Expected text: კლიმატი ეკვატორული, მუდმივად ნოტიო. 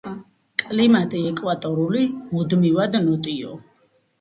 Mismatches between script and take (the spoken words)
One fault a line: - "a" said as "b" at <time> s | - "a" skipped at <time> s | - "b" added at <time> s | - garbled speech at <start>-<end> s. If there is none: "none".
none